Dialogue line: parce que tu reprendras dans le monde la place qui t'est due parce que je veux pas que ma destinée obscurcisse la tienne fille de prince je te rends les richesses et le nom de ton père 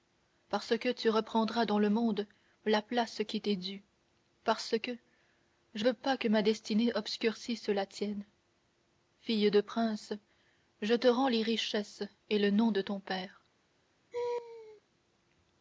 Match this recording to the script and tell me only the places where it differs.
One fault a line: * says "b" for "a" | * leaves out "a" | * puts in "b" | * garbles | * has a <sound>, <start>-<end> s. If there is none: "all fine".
* has a laugh, 14.1-14.8 s